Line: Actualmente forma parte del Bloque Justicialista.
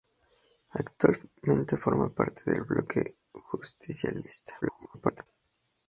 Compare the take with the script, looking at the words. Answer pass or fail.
fail